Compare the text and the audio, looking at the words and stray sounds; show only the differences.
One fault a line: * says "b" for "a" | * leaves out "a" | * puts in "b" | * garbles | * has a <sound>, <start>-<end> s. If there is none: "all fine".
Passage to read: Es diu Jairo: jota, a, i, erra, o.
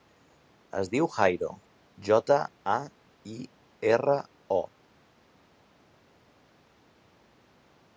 all fine